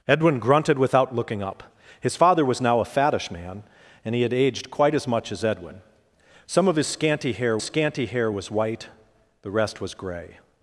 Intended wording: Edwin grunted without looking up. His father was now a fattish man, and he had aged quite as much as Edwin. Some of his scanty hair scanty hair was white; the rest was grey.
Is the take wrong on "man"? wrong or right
right